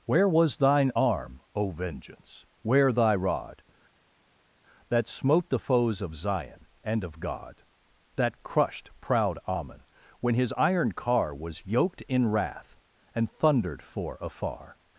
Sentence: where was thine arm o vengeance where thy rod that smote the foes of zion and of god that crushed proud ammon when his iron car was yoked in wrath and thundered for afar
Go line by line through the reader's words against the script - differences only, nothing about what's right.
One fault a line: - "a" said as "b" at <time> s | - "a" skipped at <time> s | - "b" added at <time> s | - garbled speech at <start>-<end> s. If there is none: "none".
none